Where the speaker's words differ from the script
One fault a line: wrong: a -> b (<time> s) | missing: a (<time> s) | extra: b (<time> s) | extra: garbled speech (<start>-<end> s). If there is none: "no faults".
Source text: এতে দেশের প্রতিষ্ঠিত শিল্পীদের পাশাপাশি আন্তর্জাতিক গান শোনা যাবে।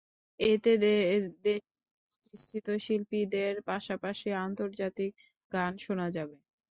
no faults